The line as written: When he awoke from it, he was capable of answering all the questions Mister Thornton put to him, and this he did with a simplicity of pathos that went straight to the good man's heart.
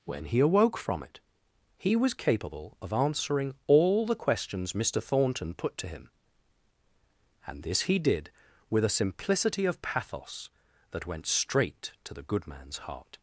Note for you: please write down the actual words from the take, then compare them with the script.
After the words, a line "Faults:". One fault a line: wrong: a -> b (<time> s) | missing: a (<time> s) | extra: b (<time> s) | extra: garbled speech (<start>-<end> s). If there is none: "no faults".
When he awoke from it, he was capable of answering all the questions Mister Thornton put to him, and this he did with a simplicity of pathos that went straight to the good man's heart.
Faults:
no faults